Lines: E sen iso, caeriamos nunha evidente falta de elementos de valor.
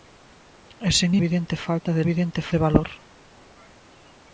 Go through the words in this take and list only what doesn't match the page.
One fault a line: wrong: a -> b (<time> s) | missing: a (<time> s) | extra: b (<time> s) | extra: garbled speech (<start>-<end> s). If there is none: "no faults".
missing: iso caeriamos nunha (1.1 s)
wrong: elementos -> evidente (2.0 s)